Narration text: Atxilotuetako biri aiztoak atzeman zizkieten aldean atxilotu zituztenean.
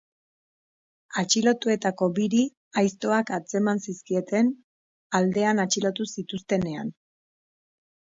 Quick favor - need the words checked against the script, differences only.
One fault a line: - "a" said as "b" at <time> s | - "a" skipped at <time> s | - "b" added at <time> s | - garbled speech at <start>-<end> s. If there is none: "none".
none